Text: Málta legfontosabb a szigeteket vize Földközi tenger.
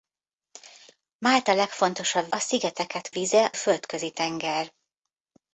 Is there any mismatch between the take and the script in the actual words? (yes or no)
no